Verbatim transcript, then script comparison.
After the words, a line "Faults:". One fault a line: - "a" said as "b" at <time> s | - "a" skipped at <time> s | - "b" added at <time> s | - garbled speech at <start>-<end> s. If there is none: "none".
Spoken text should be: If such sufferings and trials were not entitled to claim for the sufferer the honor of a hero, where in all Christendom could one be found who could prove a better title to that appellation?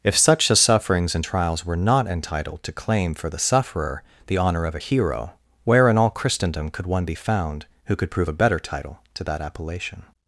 If such a sufferings and trials were not entitled to claim for the sufferer the honor of a hero, where in all Christendom could one be found who could prove a better title to that appellation?
Faults:
- "a" added at 0.5 s